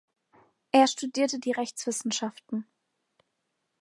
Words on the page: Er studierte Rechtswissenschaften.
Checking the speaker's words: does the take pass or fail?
fail